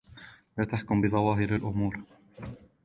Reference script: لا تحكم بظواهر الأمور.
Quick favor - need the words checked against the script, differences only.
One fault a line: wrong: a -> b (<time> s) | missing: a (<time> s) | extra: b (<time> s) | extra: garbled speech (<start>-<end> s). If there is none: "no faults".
no faults